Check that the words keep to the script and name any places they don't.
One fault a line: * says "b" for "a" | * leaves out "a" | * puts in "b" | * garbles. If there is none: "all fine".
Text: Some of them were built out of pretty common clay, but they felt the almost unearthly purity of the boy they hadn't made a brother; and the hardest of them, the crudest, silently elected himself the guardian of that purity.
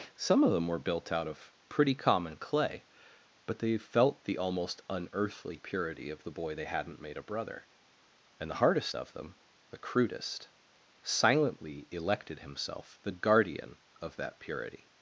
all fine